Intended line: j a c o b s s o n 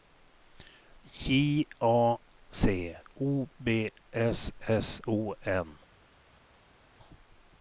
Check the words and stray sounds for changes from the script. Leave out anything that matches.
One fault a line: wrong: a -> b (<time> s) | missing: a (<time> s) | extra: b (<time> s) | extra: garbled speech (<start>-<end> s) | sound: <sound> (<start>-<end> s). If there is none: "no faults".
no faults